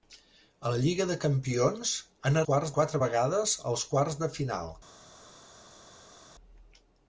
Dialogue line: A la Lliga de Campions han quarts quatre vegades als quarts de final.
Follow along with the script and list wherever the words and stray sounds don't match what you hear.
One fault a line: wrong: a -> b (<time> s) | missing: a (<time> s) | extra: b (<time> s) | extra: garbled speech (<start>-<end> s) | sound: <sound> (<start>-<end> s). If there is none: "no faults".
no faults